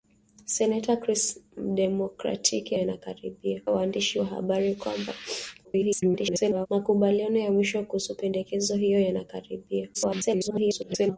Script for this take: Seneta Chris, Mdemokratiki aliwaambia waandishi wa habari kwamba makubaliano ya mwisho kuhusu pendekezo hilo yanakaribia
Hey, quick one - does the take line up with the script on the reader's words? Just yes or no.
no